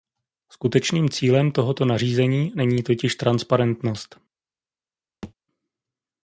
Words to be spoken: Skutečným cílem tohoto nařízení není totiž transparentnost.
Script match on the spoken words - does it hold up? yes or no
yes